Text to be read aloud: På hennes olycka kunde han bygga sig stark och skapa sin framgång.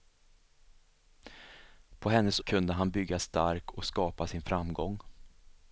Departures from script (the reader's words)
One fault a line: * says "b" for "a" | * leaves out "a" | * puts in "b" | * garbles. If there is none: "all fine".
* leaves out "olycka"
* leaves out "sig"